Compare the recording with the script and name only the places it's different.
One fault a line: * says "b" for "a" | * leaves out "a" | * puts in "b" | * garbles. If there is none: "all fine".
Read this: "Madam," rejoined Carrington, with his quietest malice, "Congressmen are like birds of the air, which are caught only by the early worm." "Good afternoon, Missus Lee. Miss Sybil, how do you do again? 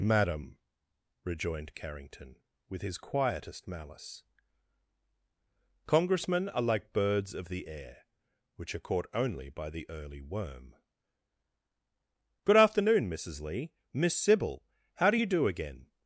all fine